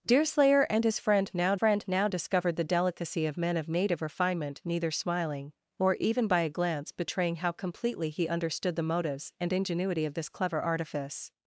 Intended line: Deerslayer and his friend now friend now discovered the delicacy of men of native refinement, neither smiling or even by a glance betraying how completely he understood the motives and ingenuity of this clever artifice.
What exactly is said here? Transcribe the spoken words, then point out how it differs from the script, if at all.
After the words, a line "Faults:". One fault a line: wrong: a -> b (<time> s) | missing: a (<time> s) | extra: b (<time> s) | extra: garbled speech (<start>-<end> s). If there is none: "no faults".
Deerslayer and his friend now friend now discovered the delicacy of men of native refinement, neither smiling or even by a glance betraying how completely he understood the motives and ingenuity of this clever artifice.
Faults:
no faults